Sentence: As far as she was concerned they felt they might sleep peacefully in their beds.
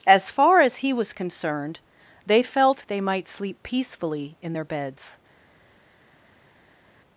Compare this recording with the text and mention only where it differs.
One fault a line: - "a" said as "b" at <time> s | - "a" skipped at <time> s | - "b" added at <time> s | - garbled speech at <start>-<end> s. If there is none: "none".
- "she" said as "he" at 0.8 s